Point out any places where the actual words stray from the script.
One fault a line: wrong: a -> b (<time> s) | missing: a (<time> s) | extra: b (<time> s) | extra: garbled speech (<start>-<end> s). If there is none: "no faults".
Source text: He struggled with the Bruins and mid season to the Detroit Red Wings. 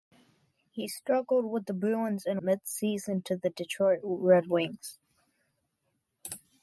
no faults